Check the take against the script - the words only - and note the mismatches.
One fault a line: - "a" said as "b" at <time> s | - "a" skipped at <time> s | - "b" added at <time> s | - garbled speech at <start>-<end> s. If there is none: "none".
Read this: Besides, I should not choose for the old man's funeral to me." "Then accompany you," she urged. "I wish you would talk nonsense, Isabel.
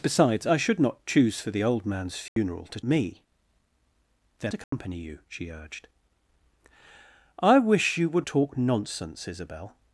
none